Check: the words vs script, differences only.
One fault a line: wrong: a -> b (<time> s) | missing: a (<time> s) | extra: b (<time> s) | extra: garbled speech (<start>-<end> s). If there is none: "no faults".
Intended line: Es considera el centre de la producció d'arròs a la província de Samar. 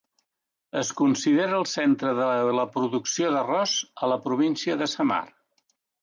no faults